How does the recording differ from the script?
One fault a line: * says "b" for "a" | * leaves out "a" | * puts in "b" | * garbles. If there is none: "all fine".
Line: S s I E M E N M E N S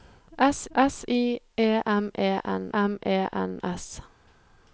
all fine